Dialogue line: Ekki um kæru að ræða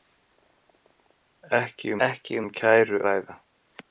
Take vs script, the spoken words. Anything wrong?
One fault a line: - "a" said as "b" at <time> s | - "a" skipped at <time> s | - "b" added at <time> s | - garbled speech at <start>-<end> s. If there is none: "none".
- "ekki" added at 2.1 s
- "að" skipped at 3.0 s